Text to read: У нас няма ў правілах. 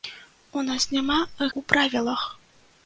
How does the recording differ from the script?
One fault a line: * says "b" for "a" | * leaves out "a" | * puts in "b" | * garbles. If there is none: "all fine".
all fine